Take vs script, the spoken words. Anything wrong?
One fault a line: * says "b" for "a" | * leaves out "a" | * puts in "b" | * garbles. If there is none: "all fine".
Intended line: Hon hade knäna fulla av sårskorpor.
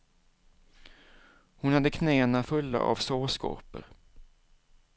all fine